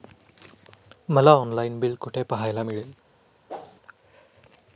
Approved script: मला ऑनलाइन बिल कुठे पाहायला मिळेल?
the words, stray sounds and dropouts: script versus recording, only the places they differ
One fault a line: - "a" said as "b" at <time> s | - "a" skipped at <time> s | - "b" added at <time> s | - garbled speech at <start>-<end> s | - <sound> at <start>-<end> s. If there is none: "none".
- whoosh at 3.5-3.8 s